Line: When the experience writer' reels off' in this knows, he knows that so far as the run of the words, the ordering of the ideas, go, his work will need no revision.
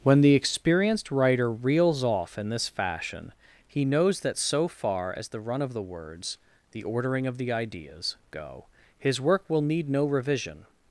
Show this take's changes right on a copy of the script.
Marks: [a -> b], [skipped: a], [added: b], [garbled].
When the [experience -> experienced] writer' reels off' in this [knows, -> fashion] he knows that so far as the run of the words, the ordering of the ideas, go, his work will need no revision.